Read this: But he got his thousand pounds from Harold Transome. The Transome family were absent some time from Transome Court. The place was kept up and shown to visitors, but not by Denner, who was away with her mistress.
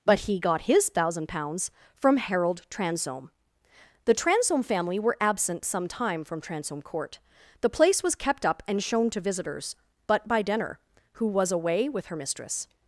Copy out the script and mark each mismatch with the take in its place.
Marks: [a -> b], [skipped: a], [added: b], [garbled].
But he got his thousand pounds from Harold Transome. The Transome family were absent some time from Transome Court. The place was kept up and shown to visitors, but [skipped: not] by Denner, who was away with her mistress.